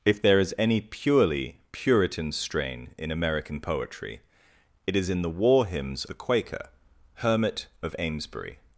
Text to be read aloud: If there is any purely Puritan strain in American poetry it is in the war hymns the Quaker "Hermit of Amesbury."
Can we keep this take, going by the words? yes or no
yes